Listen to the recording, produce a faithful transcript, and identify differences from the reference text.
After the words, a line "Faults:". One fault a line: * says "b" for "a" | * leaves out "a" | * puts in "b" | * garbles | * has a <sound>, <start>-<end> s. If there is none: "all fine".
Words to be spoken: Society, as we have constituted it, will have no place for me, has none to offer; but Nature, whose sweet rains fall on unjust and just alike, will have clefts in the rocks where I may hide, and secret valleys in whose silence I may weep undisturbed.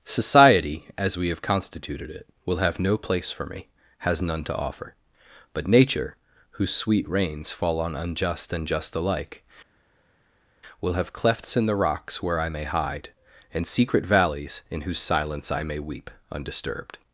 Society, as we have constituted it, will have no place for me, has none to offer; but Nature, whose sweet rains fall on unjust and just alike, will have clefts in the rocks where I may hide, and secret valleys in whose silence I may weep undisturbed.
Faults:
all fine